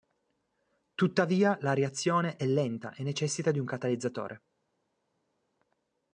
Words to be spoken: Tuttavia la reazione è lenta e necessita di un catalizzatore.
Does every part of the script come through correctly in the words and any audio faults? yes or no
yes